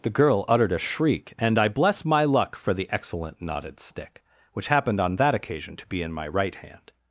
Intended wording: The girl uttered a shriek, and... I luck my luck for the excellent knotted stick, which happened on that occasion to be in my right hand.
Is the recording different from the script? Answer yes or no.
yes